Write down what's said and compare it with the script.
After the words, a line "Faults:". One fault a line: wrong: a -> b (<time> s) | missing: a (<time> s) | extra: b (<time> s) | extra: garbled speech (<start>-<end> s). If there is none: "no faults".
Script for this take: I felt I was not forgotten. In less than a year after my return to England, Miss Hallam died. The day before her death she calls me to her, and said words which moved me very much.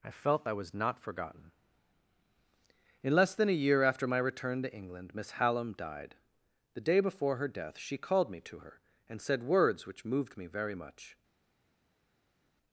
I felt I was not forgotten. In less than a year after my return to England, Miss Hallam died. The day before her death she called me to her, and said words which moved me very much.
Faults:
wrong: calls -> called (8.0 s)